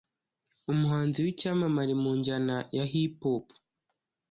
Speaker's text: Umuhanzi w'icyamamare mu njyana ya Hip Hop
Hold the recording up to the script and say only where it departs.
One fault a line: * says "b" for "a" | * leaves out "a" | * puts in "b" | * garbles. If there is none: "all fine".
all fine